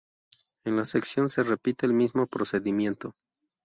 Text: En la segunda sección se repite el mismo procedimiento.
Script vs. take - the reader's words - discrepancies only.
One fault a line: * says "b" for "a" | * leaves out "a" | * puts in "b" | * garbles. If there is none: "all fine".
* leaves out "segunda"